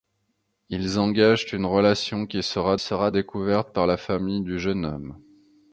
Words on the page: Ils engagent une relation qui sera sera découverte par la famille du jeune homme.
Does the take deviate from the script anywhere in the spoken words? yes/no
no